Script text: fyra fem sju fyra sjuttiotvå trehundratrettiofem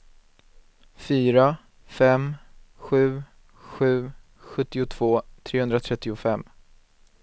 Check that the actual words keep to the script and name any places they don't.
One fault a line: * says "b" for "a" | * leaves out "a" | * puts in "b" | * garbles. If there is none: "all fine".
* says "sju" for "fyra"